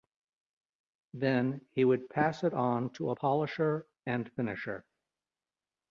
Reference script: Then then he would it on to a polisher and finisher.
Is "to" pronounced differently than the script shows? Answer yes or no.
no